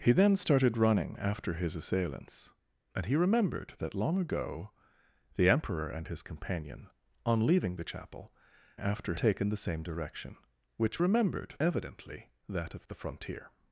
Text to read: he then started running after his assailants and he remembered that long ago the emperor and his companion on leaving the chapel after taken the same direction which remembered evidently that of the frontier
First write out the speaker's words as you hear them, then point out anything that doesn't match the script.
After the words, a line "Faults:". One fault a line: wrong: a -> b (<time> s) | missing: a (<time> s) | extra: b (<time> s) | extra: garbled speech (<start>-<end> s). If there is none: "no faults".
he then started running after his assailants and he remembered that long ago the emperor and his companion on leaving the chapel after taken the same direction which remembered evidently that of the frontier
Faults:
no faults